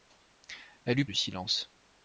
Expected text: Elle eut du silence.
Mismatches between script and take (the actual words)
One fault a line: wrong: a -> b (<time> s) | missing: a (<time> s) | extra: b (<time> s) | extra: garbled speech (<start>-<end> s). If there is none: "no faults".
no faults